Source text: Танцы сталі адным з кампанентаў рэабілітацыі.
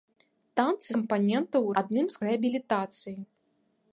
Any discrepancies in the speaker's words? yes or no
yes